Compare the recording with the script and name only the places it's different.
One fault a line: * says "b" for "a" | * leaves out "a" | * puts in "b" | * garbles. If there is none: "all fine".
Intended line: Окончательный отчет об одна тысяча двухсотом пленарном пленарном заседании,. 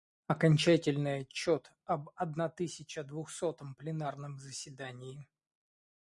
* leaves out "пленарном"